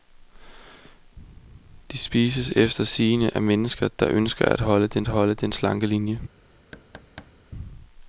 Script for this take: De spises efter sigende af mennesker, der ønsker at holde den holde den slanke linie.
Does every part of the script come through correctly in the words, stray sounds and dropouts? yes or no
no